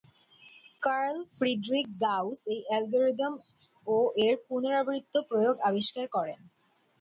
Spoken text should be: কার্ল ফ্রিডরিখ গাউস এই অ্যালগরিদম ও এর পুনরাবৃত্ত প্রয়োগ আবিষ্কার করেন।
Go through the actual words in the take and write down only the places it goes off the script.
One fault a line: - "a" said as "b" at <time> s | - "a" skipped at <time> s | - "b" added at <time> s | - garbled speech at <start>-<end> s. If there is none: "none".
none